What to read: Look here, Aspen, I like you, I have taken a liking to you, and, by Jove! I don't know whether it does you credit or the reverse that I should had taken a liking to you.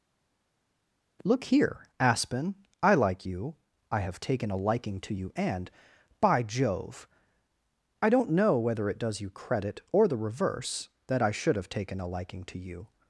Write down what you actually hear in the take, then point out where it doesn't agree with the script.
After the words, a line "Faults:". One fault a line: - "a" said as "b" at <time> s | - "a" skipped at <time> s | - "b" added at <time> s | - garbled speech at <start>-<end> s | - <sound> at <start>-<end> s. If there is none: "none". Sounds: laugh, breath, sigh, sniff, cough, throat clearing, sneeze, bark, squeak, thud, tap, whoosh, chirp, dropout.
Look here, Aspen, I like you, I have taken a liking to you, and, by Jove! I don't know whether it does you credit or the reverse that I should have taken a liking to you.
Faults:
- "had" said as "have" at 11.6 s